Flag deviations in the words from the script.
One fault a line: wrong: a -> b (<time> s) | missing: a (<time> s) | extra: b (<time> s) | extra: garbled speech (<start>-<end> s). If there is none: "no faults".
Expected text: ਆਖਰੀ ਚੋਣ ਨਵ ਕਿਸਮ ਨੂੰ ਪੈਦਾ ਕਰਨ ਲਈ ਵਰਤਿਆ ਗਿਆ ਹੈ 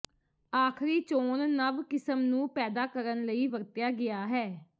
no faults